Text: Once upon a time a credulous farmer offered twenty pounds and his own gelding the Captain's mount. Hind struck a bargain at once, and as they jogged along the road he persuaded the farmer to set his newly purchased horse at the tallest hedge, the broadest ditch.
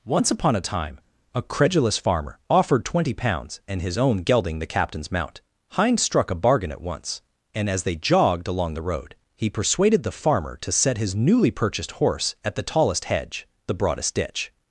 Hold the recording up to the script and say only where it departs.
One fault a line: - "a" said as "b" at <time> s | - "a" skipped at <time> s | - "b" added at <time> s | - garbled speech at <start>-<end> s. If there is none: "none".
none